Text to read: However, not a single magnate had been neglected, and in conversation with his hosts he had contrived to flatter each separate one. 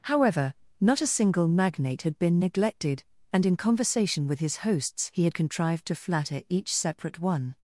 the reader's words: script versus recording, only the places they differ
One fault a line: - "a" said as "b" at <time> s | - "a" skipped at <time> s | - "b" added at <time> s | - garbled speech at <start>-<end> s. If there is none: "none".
none